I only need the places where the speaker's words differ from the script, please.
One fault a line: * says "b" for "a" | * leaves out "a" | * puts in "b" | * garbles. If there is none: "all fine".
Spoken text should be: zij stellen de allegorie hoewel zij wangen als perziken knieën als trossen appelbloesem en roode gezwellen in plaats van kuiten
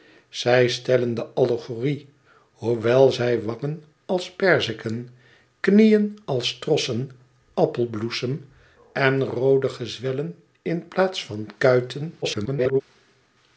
* garbles